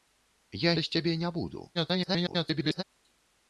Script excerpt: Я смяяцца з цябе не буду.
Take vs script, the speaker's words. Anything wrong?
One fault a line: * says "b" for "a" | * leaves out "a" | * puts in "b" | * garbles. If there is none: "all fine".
* leaves out "смяяцца"
* garbles